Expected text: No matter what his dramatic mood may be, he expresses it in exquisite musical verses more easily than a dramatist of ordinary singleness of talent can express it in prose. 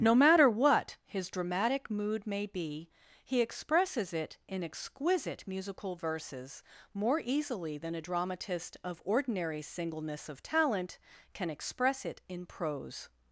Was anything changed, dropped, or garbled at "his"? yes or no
no